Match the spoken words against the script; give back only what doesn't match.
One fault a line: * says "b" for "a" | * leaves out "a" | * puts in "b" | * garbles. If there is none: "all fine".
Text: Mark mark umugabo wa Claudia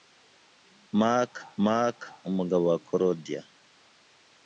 all fine